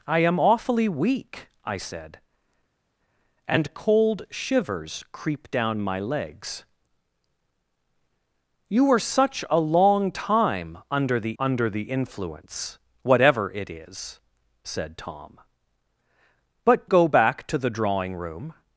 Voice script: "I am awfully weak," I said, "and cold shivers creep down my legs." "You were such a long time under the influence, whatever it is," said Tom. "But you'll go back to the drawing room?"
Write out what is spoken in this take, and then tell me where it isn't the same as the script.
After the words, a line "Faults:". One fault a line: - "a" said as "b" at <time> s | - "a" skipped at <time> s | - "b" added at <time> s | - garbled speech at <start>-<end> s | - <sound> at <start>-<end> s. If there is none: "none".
"I am awfully weak," I said, "and cold shivers creep down my legs." "You were such a long time under the under the influence, whatever it is," said Tom. "But go back to the drawing room?"
Faults:
- "under the" added at 11.4 s
- "you'll" skipped at 16.8 s